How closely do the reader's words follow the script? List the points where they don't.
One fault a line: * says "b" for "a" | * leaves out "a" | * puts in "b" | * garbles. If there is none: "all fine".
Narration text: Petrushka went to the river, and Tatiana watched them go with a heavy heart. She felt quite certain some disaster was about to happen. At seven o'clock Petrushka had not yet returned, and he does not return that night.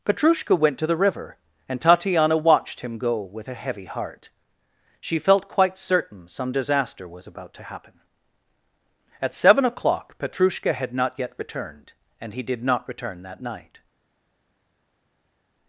* says "him" for "them"
* says "did" for "does"